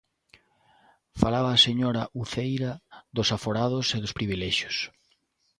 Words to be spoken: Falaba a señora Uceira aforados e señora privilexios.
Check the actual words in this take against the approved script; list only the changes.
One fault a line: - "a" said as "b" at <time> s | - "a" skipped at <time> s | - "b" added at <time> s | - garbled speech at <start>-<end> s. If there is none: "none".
- "dos" added at 3.1 s
- "señora" said as "dos" at 4.0 s